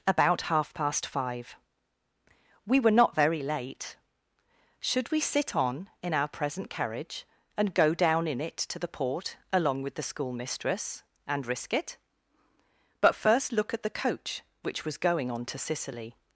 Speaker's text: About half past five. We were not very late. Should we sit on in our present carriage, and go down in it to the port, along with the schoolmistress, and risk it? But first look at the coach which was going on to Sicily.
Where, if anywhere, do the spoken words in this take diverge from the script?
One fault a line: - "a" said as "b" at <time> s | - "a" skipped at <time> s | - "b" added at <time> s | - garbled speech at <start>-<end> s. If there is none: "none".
none